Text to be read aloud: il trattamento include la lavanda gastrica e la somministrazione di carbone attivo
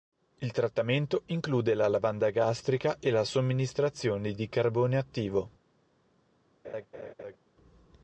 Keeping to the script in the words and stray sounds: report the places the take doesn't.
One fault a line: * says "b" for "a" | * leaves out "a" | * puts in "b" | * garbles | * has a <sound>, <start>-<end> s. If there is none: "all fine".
* has a laugh, 6.6-7.4 s